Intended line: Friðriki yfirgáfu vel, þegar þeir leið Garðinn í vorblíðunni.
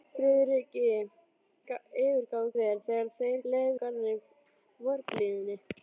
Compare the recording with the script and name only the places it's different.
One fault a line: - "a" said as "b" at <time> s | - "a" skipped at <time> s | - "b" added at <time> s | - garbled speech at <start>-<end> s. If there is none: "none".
none